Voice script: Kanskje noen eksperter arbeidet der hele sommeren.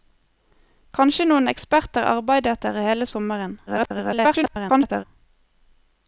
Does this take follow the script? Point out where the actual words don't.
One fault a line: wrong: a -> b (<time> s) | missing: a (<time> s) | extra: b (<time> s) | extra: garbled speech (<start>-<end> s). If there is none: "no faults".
extra: garbled speech (3.7-5.0 s)